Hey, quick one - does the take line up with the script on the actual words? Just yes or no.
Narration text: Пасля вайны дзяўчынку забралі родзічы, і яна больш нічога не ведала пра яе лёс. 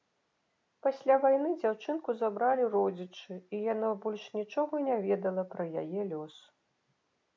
yes